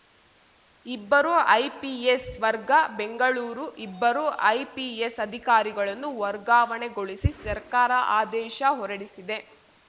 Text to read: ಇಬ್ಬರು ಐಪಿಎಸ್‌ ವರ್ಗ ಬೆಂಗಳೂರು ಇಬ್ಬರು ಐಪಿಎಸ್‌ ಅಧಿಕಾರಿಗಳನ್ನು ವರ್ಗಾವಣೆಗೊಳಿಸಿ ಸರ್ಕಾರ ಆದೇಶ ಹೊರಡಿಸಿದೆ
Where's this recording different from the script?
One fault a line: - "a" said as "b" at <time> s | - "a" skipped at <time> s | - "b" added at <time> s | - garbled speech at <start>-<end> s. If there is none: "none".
none